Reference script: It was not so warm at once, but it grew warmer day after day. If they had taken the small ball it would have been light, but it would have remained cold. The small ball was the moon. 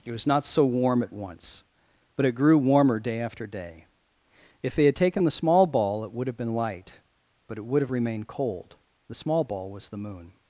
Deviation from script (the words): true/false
false